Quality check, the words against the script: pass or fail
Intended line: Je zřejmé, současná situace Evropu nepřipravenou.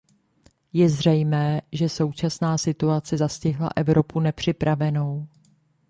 fail